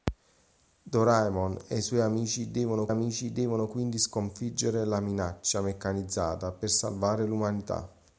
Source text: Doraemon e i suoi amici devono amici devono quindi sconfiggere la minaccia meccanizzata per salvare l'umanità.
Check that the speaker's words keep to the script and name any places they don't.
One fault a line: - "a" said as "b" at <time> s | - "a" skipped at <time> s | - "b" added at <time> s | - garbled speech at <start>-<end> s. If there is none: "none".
none